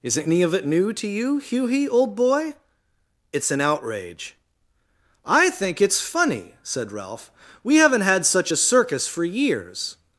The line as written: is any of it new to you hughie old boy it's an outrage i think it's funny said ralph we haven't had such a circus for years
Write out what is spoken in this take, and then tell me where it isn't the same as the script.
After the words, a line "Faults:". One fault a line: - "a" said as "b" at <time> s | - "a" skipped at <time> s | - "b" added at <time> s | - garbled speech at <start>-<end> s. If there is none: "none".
is any of it new to you hughie old boy it's an outrage i think it's funny said ralph we haven't had such a circus for years
Faults:
none